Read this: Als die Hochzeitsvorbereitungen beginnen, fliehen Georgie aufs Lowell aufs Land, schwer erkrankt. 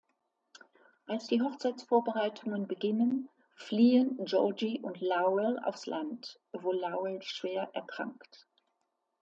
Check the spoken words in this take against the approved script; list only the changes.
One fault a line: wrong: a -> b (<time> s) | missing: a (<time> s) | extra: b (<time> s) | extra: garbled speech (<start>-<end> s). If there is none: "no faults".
wrong: aufs -> und (4.8 s)
extra: wo Lowell (6.5 s)